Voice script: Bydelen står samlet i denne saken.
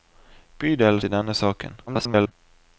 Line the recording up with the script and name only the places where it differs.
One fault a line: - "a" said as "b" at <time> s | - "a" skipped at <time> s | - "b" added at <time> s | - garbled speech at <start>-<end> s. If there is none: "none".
- "står samlet" skipped at 1.0 s
- garbled speech at 1.9-2.3 s